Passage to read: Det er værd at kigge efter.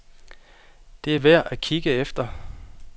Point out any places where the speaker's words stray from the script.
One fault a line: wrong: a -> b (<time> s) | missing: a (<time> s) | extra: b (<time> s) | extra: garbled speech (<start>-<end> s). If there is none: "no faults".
no faults